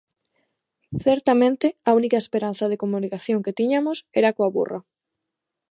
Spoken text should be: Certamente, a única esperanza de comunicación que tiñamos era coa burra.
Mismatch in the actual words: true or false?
false